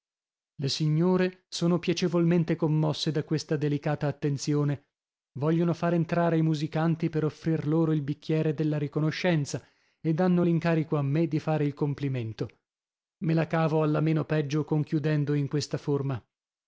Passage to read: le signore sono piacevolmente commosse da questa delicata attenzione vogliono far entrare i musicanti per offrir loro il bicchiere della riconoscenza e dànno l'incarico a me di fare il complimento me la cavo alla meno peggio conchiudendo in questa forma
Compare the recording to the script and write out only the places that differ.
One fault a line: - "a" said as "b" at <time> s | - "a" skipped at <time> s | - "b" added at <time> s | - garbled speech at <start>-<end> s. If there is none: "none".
none